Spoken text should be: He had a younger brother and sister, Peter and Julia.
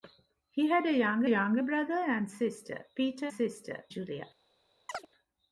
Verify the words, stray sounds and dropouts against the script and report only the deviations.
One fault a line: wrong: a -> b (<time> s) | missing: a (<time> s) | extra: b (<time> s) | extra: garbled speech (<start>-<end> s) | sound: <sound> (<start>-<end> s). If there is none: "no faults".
extra: younger (1.3 s)
wrong: and -> sister (3.3 s)
sound: chirp (4.9-5.1 s)